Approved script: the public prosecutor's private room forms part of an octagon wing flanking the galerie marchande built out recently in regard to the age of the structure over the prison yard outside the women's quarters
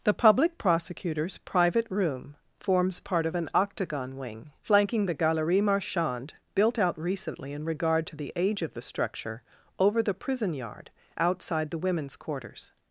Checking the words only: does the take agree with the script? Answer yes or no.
yes